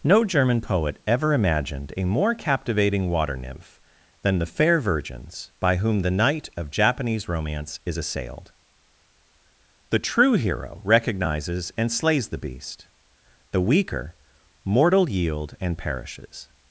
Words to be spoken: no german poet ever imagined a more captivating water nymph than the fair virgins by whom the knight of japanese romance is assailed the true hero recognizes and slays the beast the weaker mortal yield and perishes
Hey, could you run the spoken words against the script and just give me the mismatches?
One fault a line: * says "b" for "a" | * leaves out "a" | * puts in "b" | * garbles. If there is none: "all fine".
all fine